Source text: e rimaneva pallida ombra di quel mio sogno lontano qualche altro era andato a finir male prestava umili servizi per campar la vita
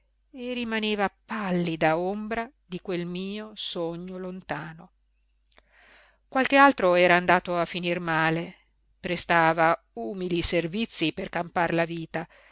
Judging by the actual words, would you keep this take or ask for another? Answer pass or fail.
pass